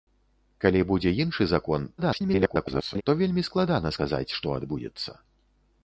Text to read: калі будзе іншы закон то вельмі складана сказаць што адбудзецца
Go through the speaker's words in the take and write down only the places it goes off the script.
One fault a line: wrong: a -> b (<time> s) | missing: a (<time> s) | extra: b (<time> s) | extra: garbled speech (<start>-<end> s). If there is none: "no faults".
extra: garbled speech (2.0-3.0 s)